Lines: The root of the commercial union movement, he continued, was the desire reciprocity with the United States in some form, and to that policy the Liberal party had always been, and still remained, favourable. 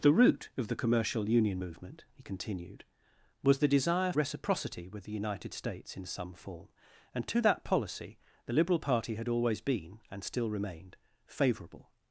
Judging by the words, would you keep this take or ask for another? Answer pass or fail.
pass